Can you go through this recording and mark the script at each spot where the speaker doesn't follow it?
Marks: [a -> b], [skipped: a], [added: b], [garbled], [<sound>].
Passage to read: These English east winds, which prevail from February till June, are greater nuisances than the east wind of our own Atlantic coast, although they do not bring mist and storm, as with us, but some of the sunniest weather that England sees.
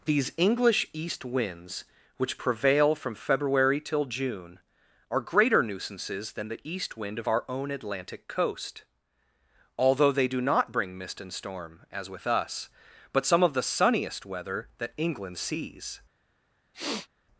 These English east winds, which prevail from February till June, are greater nuisances than the east wind of our own Atlantic coast, although they do not bring mist and storm, as with us, but some of the sunniest weather that England sees. [sniff]